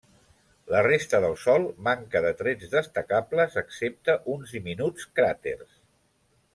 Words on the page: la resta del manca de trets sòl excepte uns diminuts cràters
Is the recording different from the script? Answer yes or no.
yes